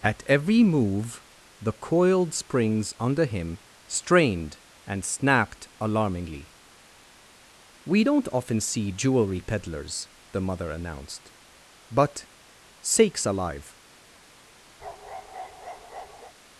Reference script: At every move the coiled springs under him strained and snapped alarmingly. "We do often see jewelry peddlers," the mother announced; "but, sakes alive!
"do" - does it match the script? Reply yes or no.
no